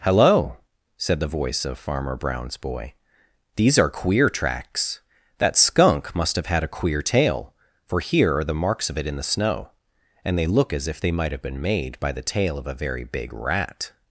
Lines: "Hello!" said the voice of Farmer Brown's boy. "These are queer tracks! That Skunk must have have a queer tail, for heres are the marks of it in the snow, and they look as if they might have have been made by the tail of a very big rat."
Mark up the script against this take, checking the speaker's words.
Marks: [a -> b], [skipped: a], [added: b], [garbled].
"Hello!" said the voice of Farmer Brown's boy. "These are queer tracks! That Skunk must have [have -> had] a queer tail, for [heres -> here] are the marks of it in the snow, and they look as if they might have [skipped: have] been made by the tail of a very big rat."